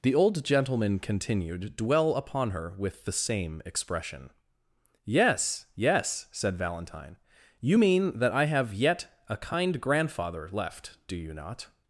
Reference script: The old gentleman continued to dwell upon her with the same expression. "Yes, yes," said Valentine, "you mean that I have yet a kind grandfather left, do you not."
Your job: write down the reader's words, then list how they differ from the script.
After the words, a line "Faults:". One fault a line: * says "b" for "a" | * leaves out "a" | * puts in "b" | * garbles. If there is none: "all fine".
The old gentleman continued dwell upon her with the same expression. "Yes, yes," said Valentine, "you mean that I have yet a kind grandfather left, do you not."
Faults:
* leaves out "to"